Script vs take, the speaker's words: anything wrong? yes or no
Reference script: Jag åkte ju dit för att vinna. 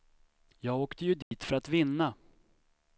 no